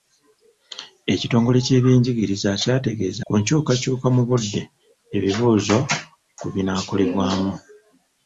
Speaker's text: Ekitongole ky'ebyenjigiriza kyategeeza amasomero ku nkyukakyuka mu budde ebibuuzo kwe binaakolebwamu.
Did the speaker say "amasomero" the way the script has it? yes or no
no